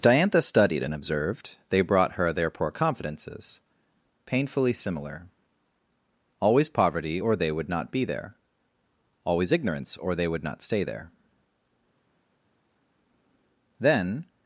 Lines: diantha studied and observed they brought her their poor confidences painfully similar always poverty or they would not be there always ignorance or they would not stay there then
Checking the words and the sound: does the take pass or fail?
pass